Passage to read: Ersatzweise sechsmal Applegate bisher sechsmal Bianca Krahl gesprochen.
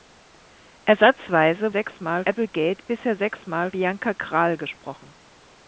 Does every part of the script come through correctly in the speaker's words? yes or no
yes